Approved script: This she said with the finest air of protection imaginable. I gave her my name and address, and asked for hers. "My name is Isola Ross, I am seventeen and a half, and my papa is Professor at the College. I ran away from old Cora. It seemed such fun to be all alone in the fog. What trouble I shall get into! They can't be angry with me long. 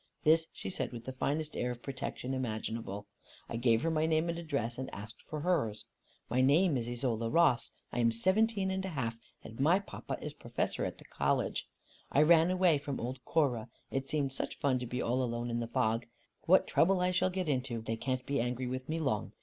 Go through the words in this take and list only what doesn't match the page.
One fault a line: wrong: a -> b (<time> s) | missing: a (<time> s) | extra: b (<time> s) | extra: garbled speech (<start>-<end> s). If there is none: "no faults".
no faults